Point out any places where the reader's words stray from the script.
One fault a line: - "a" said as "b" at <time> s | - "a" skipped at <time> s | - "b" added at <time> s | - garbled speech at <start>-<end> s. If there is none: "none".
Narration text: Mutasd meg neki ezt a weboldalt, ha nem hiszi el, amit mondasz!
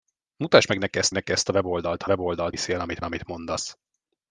- "neki ezt" added at 1.1 s
- "nem" said as "weboldalt" at 2.1 s
- "amit" added at 3.0 s